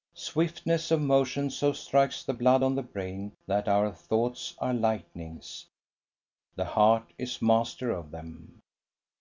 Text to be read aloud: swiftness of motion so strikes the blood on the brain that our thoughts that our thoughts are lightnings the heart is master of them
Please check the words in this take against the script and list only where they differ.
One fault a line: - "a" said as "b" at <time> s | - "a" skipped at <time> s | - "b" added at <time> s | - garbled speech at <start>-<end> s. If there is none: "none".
- "that our thoughts" skipped at 4.5 s